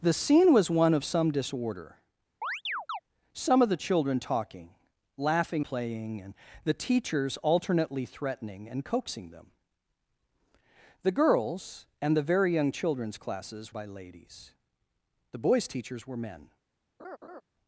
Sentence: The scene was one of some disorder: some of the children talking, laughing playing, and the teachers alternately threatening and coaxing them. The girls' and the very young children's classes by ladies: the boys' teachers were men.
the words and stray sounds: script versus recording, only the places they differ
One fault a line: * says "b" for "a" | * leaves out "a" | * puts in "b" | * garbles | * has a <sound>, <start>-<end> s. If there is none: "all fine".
* has a chirp, 2.4-3.0 s
* has a laugh, 17.0-17.4 s